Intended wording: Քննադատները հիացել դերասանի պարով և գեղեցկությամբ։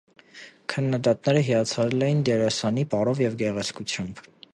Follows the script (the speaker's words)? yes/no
no